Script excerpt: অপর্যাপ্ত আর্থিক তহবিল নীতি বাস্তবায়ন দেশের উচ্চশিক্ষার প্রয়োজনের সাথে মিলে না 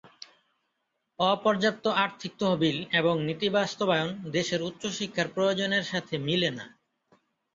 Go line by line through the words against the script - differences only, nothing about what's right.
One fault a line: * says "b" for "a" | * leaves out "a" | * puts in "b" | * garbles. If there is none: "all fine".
* puts in "এবং"